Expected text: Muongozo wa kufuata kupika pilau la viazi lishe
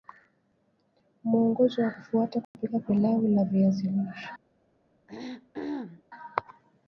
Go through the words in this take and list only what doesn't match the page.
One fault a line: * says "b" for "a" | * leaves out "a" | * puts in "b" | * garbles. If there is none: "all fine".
all fine